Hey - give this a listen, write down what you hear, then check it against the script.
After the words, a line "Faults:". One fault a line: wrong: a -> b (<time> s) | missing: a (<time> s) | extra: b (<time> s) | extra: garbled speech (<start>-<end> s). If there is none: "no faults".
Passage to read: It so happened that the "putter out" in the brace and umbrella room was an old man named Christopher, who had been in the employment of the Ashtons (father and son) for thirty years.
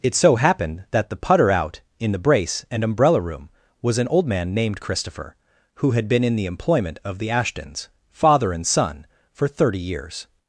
It so happened that the "putter out" in the brace and umbrella room was an old man named Christopher, who had been in the employment of the Ashtons (father and son) for thirty years.
Faults:
no faults